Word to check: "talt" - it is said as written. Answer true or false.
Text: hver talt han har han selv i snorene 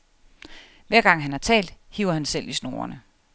false